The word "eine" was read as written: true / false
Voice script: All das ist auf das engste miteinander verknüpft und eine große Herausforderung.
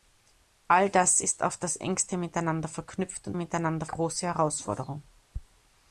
false